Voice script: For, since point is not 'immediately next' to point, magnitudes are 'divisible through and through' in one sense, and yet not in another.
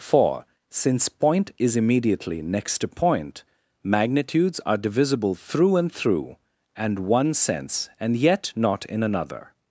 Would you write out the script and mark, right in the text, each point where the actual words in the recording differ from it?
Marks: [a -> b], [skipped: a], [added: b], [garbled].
For, since point is [skipped: not] 'immediately next' to point, magnitudes are 'divisible through and through' [in -> and] one sense, and yet not in another.